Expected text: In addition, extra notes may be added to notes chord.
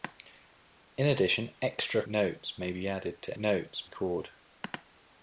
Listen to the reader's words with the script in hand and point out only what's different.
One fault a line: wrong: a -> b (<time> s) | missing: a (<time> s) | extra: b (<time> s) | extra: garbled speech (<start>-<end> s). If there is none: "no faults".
no faults